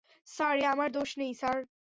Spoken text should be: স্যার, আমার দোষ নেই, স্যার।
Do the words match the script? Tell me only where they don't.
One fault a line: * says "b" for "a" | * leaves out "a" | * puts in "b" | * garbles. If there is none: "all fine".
all fine